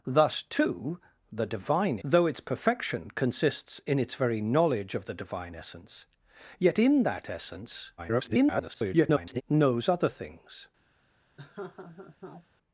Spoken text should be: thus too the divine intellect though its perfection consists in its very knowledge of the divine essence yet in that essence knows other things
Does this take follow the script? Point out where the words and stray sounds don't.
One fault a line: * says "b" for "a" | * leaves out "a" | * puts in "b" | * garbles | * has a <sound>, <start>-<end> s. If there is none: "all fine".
* leaves out "intellect"
* garbles
* has a laugh, 11.4-12.5 s